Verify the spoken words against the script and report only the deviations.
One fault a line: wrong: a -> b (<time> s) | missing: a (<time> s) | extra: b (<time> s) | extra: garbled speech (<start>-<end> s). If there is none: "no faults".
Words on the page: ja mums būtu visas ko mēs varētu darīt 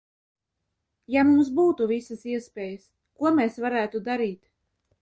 extra: iespējas (2.4 s)